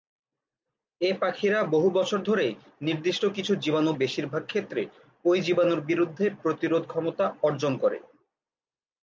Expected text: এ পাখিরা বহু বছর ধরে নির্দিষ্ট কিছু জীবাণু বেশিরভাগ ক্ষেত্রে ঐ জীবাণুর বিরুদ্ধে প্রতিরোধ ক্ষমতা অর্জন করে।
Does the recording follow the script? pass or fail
pass